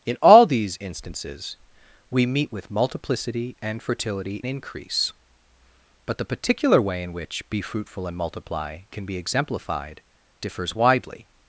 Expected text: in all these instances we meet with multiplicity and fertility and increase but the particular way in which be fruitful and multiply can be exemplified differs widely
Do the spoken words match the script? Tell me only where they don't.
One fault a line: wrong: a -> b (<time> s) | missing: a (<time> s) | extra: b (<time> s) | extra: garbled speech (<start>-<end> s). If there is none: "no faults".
missing: and (4.4 s)